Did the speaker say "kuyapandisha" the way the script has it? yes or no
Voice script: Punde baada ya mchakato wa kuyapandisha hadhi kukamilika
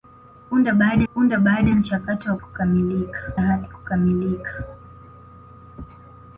no